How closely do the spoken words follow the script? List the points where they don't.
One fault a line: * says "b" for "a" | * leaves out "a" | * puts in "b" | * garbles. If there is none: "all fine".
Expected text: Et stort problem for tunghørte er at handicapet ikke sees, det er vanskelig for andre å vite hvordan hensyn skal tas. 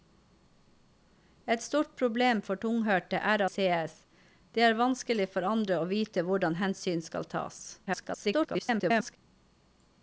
* leaves out "at handicapet ikke"
* garbles